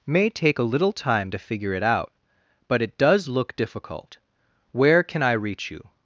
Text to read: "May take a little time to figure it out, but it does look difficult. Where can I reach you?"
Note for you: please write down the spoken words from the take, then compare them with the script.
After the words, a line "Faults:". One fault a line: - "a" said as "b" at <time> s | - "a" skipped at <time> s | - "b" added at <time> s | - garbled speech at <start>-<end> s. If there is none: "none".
"May take a little time to figure it out, but it does look difficult. Where can I reach you?"
Faults:
none